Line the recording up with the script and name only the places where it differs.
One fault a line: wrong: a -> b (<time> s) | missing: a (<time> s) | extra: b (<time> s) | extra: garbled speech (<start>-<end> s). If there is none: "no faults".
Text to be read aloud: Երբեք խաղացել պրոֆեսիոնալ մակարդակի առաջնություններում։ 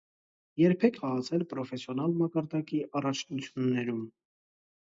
no faults